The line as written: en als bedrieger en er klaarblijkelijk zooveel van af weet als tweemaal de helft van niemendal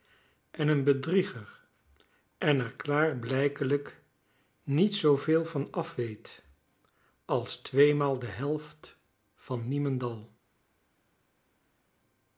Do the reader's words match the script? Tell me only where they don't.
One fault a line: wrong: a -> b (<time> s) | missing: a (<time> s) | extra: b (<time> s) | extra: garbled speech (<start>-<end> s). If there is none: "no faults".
wrong: als -> een (0.7 s)
extra: niet (4.6 s)